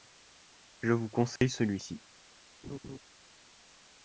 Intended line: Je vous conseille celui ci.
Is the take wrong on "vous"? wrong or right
right